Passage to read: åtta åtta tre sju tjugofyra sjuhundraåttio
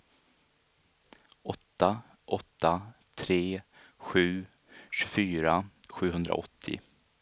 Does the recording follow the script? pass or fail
pass